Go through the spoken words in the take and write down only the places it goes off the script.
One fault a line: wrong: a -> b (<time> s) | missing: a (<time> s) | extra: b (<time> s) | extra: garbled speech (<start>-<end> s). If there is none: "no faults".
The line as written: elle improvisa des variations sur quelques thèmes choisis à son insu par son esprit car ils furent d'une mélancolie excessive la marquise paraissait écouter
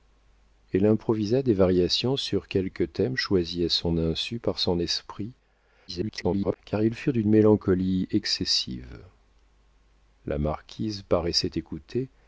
extra: garbled speech (5.9-6.6 s)